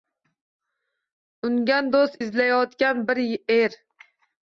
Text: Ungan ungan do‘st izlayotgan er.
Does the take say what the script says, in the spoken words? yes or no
no